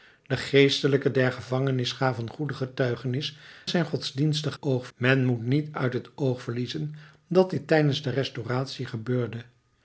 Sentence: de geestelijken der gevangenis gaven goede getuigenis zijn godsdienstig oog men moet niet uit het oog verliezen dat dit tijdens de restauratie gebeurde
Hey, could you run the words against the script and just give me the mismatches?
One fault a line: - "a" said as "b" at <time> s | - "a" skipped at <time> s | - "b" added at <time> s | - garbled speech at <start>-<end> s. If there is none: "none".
none